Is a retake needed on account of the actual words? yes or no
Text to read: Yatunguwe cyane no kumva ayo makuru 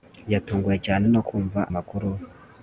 yes